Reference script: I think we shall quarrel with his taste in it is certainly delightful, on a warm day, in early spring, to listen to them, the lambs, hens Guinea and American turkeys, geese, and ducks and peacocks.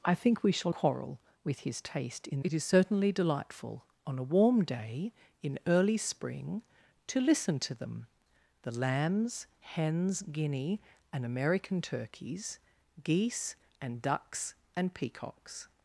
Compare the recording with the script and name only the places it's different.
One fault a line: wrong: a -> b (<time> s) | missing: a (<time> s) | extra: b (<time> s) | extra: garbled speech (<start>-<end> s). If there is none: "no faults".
no faults